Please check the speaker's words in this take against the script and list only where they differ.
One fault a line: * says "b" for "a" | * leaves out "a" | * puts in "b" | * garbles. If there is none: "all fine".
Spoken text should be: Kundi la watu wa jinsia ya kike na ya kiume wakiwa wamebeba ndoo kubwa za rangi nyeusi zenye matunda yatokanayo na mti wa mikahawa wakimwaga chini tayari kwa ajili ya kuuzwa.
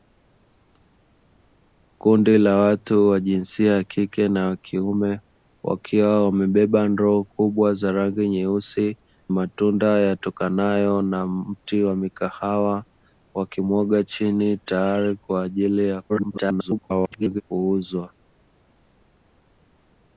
* leaves out "zenye"
* garbles